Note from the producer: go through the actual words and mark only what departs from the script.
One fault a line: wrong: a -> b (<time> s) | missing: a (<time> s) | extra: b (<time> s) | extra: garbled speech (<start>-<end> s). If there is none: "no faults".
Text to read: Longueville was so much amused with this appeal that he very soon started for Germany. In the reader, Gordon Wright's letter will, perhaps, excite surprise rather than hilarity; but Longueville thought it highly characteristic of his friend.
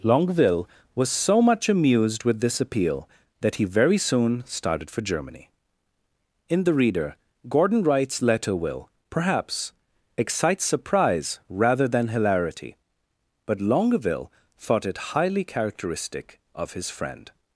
no faults